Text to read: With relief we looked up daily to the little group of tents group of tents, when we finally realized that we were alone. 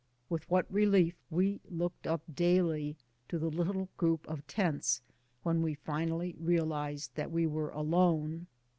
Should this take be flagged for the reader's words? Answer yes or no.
yes